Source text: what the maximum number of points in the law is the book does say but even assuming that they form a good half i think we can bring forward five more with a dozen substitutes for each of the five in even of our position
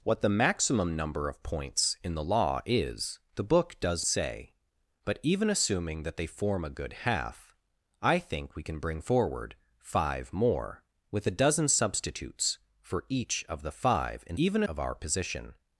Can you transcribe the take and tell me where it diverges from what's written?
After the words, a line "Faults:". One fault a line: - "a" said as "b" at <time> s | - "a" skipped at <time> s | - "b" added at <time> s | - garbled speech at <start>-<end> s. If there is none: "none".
what the maximum number of points in the law is the book does say but even assuming that they form a good half i think we can bring forward five more with a dozen substitutes for each of the five in even of our position
Faults:
none